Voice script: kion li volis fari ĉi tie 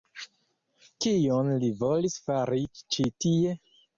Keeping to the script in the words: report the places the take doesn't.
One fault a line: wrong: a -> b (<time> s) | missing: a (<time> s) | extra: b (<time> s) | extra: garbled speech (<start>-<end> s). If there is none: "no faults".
no faults